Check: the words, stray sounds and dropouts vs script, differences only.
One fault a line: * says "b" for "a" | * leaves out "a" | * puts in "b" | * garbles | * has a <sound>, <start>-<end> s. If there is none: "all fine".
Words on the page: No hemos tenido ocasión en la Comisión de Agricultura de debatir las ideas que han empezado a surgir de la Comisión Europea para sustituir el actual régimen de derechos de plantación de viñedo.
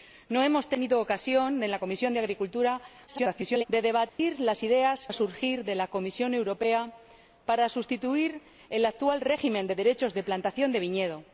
* garbles
* has a dropout, 4.1-4.2 s
* leaves out "que han empezado"